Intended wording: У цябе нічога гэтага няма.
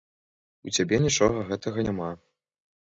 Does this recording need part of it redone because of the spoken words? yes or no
no